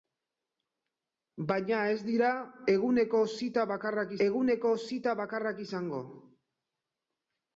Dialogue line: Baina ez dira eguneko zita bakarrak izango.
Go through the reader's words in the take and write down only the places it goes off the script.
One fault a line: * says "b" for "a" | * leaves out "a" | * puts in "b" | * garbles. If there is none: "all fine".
* puts in "eguneko zita bakarrak"